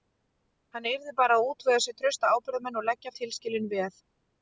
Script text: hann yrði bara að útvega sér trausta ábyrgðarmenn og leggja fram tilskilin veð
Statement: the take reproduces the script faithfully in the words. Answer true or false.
false